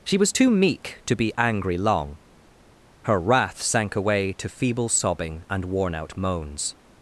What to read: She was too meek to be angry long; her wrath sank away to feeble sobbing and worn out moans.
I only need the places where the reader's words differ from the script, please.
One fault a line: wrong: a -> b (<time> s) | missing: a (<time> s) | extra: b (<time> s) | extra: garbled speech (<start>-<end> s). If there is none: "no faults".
no faults